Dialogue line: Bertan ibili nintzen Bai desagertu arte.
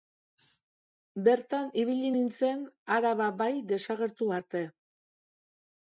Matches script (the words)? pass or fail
fail